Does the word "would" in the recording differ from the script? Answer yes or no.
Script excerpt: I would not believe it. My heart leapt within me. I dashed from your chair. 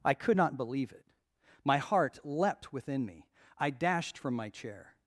yes